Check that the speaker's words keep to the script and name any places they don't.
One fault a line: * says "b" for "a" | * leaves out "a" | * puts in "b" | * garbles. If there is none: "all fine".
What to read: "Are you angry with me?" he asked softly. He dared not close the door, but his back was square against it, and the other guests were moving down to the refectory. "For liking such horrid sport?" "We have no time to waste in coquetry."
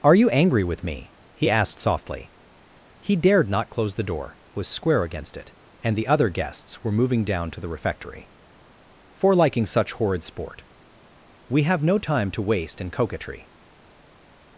* leaves out "but his back"